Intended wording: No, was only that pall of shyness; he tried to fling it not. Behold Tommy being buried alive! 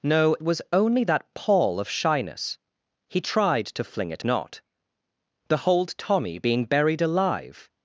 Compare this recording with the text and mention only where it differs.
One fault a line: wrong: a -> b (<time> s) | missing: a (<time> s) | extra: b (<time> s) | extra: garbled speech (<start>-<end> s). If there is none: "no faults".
no faults